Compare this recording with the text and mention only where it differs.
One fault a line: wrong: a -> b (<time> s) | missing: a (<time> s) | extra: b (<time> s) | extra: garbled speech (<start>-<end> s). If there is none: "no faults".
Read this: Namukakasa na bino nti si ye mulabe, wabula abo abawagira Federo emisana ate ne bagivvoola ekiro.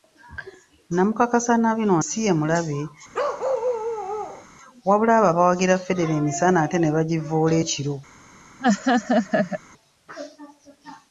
missing: nti (1.9 s)